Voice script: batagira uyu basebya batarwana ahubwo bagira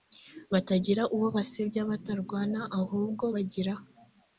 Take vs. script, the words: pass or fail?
fail